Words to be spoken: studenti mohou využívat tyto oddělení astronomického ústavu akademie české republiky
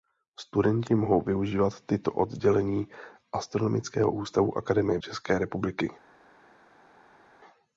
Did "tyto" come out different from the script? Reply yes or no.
no